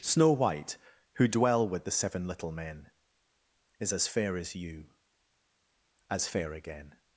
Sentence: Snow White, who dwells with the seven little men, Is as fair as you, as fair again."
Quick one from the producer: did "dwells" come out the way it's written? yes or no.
no